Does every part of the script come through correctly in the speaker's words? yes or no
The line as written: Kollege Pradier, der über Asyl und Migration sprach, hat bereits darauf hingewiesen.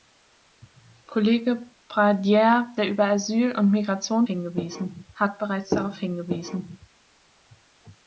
no